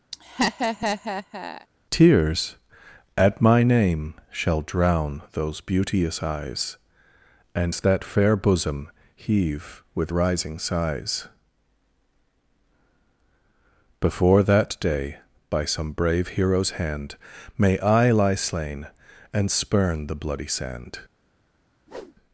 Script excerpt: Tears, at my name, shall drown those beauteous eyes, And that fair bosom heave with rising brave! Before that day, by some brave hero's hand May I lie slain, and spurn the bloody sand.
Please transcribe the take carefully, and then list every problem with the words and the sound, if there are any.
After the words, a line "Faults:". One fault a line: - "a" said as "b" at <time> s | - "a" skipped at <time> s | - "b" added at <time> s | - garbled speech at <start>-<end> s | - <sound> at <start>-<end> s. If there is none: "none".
Tears, at my name, shall drown those beauteous eyes, And that fair bosom heave with rising sighs! Before that day, by some brave hero's hand May I lie slain, and spurn the bloody sand.
Faults:
- laugh at 0.1-1.7 s
- "brave" said as "sighs" at 10.6 s
- whoosh at 21.9-22.2 s